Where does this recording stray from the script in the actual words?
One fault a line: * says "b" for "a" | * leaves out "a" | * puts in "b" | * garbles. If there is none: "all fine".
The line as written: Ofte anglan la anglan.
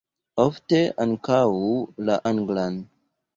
* says "ankaŭ" for "anglan"